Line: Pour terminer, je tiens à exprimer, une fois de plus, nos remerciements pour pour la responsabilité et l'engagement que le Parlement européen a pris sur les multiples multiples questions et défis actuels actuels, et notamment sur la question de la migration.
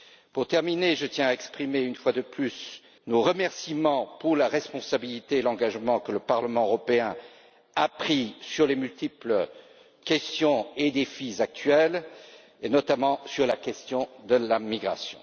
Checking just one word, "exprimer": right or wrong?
right